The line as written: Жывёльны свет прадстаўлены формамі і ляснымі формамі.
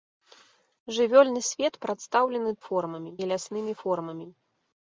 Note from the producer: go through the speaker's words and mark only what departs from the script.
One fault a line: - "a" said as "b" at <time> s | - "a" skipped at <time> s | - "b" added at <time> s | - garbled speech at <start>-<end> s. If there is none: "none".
none